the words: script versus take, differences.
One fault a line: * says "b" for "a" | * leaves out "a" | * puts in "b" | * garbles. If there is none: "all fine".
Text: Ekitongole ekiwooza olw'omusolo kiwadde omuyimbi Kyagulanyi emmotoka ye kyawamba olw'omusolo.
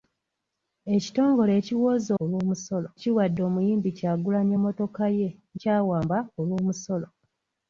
all fine